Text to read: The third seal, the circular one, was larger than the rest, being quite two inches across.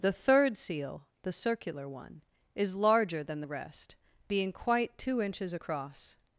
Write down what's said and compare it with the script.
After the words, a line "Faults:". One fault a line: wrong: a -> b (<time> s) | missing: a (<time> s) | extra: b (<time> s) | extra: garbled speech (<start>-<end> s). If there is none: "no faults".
The third seal, the circular one, is larger than the rest, being quite two inches across.
Faults:
wrong: was -> is (2.6 s)